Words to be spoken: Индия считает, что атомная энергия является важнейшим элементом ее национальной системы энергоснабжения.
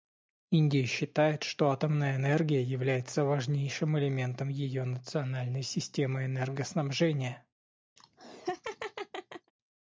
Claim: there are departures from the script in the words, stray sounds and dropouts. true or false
true